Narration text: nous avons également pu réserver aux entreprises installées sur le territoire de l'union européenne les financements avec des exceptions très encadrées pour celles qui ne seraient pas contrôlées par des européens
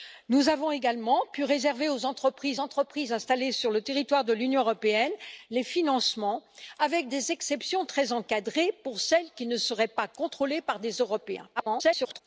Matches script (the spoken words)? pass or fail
fail